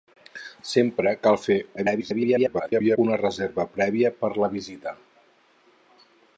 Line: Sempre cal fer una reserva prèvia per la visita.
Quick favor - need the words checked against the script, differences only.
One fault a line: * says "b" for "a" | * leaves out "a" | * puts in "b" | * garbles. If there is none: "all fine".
* garbles